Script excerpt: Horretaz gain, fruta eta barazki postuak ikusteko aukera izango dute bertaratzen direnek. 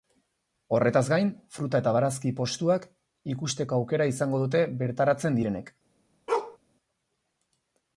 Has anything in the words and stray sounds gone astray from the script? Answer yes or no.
yes